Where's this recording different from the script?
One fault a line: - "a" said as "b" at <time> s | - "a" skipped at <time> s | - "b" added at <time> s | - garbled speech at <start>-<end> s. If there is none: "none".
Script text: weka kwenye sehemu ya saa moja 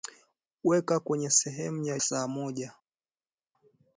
none